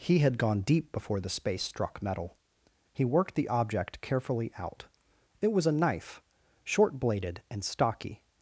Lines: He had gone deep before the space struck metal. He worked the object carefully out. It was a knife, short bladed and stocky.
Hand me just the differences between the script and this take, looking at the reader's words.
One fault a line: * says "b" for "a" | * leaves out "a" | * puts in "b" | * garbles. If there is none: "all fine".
all fine